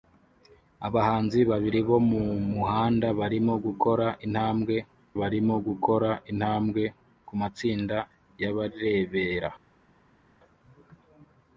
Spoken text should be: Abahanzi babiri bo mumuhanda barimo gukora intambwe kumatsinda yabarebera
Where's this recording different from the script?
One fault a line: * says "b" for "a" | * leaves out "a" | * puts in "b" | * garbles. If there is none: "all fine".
* puts in "barimo gukora intambwe"